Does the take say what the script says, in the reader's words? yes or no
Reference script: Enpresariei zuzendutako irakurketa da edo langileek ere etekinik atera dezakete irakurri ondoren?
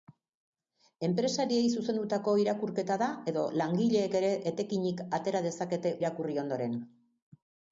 yes